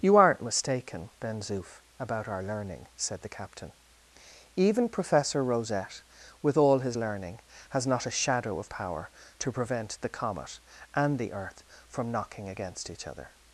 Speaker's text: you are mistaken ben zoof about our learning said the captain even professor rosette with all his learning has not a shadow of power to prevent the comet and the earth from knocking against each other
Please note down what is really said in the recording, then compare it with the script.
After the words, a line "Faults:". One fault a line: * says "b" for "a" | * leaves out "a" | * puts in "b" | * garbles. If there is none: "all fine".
you aren't mistaken ben zoof about our learning said the captain even professor rosette with all his learning has not a shadow of power to prevent the comet and the earth from knocking against each other
Faults:
* says "aren't" for "are"